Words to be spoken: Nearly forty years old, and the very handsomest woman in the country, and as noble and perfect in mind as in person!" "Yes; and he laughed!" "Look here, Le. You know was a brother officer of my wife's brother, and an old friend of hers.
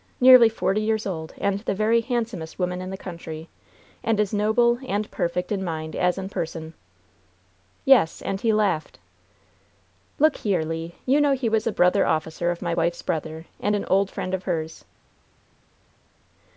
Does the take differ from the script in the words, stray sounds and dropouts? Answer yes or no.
yes